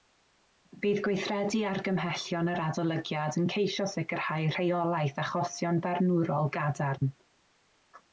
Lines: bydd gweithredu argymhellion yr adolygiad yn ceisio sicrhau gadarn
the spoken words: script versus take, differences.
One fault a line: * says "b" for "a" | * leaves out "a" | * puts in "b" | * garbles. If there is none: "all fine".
* puts in "rheolaeth achosion barnwrol"